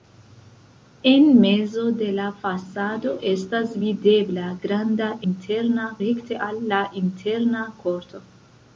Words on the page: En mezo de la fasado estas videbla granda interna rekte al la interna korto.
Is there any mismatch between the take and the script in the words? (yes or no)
no